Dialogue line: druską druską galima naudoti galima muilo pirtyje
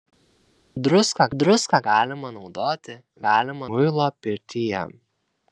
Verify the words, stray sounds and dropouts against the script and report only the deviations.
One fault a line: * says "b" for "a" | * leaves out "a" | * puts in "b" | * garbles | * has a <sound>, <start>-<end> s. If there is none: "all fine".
all fine